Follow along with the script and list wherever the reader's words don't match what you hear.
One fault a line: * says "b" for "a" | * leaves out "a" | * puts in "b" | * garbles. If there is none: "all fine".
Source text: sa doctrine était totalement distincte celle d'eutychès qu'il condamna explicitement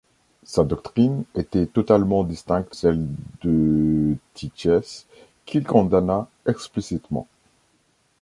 all fine